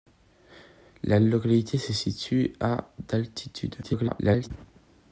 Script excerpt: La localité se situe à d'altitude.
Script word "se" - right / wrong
right